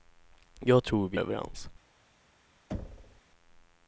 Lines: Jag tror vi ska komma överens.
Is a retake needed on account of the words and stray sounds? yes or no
yes